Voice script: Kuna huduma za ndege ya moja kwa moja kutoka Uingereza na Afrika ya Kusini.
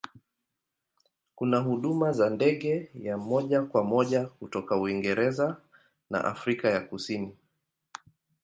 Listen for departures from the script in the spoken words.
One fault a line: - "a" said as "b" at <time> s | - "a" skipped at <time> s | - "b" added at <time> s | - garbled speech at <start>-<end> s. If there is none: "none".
none